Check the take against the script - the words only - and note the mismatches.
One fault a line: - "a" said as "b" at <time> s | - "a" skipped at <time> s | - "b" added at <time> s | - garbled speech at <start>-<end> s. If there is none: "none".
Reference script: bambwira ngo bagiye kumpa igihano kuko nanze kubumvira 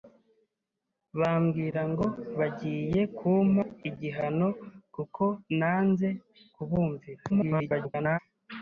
- garbled speech at 7.3-8.2 s